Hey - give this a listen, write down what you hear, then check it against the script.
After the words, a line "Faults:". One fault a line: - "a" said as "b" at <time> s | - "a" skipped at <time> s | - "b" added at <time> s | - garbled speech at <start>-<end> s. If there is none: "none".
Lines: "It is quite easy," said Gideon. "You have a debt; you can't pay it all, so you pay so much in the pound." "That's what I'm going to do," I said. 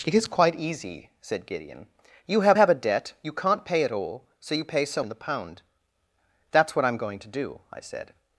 "It is quite easy," said Gideon. "You have have a debt; you can't pay it all, so you pay so in the pound." "That's what I'm going to do," I said.
Faults:
- "have" added at 2.5 s
- "much" skipped at 5.0 s